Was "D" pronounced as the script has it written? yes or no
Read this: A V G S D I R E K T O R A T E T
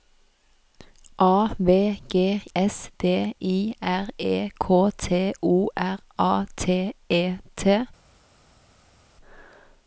yes